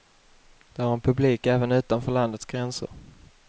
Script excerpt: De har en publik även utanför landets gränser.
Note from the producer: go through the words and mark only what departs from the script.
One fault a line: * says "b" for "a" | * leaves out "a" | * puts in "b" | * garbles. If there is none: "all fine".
all fine